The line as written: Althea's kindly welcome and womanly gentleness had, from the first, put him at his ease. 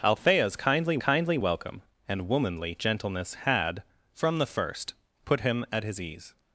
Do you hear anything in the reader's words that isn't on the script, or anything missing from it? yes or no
yes